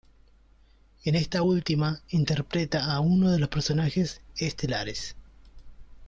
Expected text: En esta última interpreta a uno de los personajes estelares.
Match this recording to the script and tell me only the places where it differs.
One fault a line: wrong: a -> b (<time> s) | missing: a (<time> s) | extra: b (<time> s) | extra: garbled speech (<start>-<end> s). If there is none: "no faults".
no faults